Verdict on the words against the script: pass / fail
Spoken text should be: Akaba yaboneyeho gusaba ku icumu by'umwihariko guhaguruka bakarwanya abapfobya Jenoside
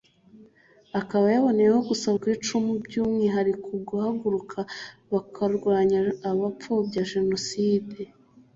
pass